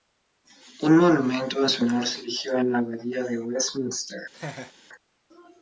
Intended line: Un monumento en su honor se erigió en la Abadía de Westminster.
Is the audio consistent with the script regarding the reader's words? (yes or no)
yes